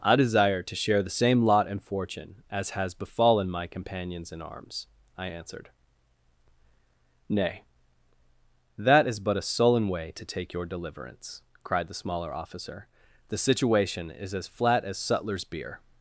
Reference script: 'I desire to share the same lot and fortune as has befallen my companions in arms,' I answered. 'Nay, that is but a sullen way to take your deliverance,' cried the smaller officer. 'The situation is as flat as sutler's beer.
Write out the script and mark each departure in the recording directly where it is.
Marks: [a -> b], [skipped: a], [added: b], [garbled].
'I desire to share the same lot and fortune as has befallen my companions in arms,' I answered. 'Nay, that is but a sullen way to take your deliverance,' cried the smaller officer. 'The situation is as flat as sutler's beer.